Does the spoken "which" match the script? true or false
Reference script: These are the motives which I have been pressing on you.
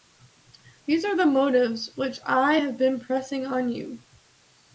true